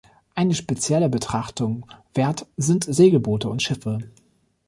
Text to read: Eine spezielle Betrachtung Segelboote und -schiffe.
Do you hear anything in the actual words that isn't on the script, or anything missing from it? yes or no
yes